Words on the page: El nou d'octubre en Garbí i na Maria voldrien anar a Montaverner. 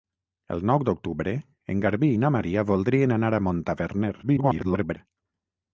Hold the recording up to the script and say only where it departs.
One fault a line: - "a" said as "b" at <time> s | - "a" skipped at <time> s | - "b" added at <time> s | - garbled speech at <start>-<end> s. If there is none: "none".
- garbled speech at 4.2-5.0 s